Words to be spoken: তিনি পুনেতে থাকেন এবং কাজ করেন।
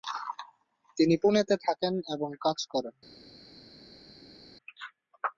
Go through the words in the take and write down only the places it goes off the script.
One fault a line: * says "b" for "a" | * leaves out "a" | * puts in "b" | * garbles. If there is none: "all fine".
all fine